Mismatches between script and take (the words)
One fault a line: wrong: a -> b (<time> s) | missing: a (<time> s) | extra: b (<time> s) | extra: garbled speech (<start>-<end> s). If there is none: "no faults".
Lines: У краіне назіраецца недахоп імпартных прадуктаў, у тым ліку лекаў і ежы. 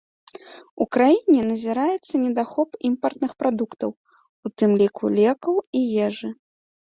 no faults